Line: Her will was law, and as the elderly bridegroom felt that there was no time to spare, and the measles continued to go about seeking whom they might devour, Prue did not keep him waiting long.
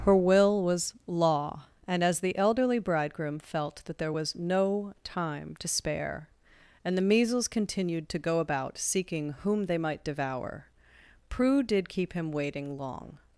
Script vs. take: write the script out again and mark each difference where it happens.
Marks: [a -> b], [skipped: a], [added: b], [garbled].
Her will was law, and as the elderly bridegroom felt that there was no time to spare, and the measles continued to go about seeking whom they might devour, Prue did [skipped: not] keep him waiting long.